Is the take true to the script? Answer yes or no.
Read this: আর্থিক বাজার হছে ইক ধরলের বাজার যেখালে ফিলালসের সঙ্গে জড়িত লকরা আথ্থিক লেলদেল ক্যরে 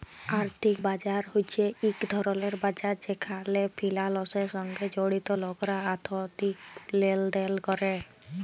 yes